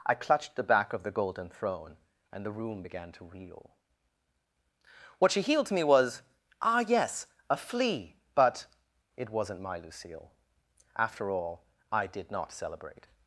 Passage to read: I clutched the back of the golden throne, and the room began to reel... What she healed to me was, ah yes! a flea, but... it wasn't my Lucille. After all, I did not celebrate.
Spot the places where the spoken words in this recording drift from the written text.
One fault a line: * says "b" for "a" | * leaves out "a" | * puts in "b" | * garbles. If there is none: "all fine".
all fine